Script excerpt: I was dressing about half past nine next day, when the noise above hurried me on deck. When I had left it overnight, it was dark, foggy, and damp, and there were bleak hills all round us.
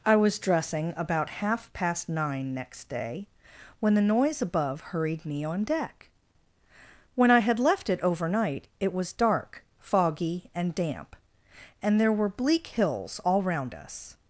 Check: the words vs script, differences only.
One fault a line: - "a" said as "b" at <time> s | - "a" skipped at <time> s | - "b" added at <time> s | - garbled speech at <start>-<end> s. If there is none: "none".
none